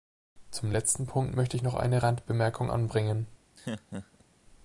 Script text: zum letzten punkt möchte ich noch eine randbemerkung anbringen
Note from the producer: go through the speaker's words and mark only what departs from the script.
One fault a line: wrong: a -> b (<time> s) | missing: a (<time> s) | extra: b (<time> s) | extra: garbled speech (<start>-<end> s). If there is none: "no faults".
no faults